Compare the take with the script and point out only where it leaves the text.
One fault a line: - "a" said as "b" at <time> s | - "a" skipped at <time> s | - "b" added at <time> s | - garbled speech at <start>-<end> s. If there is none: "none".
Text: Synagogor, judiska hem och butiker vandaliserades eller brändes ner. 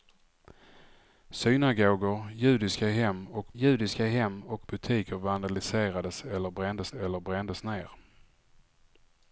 - "judiska hem och" added at 3.5 s
- "eller brändes" added at 6.9 s